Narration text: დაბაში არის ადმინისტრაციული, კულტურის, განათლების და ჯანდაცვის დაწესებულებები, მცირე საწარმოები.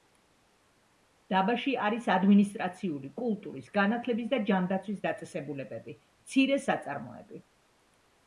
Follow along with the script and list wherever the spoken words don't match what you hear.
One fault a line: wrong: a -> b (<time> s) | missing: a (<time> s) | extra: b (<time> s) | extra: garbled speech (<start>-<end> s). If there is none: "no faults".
no faults